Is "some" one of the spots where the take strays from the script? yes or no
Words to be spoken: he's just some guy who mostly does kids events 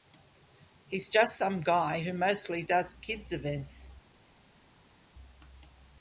no